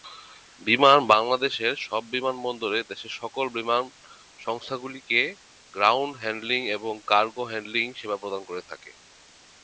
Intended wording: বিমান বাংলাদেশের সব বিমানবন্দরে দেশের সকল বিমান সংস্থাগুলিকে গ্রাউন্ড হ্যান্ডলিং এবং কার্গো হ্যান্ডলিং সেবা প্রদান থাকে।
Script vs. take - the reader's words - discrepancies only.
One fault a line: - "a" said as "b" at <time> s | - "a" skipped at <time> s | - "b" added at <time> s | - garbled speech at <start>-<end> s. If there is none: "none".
- "করে" added at 8.4 s